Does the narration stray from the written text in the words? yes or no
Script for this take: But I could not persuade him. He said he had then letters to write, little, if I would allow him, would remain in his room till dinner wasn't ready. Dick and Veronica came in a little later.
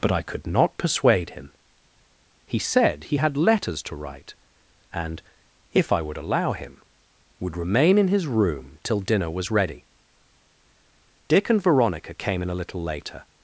yes